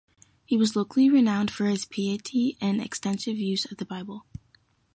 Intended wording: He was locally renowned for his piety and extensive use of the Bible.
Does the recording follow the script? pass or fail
pass